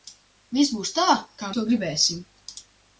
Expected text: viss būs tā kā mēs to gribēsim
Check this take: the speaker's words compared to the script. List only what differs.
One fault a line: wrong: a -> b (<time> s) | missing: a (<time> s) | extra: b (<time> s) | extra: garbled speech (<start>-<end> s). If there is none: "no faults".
missing: mēs (1.5 s)